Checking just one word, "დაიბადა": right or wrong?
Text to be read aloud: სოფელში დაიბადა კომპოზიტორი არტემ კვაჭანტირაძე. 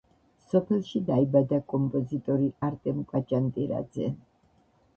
right